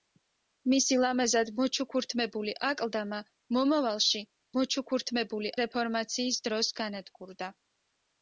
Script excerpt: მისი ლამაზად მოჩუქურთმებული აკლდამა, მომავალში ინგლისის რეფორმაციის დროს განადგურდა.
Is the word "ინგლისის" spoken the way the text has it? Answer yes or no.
no